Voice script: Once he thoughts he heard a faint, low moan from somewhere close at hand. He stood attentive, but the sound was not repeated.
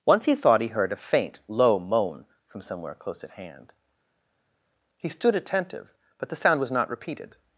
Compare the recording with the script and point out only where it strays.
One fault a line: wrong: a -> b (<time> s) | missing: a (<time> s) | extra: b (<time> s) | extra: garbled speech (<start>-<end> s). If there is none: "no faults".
wrong: thoughts -> thought (0.3 s)